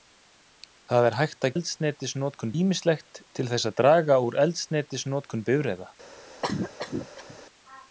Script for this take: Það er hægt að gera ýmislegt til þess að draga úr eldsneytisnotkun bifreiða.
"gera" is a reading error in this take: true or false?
true